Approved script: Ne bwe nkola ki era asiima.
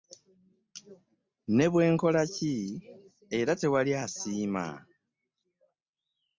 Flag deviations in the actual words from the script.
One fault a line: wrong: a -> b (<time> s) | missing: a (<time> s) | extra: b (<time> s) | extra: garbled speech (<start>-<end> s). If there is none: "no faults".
extra: tewali (3.6 s)